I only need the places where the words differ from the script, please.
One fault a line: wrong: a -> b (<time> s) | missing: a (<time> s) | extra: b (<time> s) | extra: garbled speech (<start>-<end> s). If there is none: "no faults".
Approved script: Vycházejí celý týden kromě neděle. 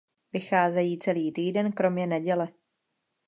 no faults